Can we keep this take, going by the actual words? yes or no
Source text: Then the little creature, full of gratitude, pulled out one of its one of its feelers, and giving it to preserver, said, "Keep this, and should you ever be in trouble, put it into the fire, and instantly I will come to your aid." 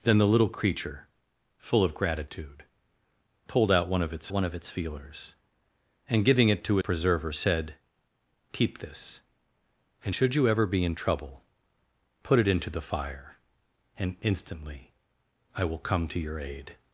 yes